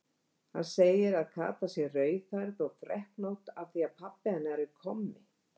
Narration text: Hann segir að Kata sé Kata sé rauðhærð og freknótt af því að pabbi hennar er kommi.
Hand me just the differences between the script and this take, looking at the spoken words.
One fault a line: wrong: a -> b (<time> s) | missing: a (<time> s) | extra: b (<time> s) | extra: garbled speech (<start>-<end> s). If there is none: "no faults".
missing: Kata sé (1.9 s)